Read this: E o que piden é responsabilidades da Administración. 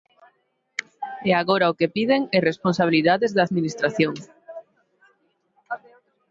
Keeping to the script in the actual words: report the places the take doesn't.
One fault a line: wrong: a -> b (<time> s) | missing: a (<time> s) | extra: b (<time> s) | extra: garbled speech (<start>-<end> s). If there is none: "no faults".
extra: agora (1.4 s)